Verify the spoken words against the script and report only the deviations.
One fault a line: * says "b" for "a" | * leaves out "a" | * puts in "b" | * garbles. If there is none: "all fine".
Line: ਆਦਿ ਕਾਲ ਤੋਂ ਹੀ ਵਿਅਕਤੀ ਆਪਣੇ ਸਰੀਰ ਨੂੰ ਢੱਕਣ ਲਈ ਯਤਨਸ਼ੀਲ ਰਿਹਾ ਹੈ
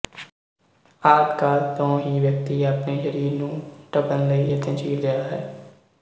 all fine